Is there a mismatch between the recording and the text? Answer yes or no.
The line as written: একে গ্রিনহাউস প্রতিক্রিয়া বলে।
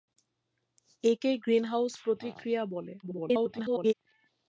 yes